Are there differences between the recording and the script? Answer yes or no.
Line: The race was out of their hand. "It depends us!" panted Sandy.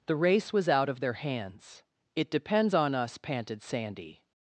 yes